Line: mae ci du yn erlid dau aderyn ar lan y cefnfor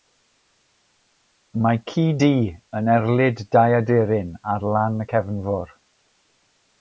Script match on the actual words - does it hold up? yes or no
yes